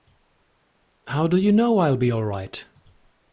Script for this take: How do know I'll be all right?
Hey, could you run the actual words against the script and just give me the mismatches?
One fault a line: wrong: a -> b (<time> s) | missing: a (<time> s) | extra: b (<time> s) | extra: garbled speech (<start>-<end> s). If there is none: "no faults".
extra: you (1.4 s)